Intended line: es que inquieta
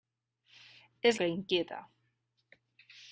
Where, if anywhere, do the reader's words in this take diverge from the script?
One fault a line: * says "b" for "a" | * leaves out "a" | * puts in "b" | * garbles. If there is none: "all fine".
all fine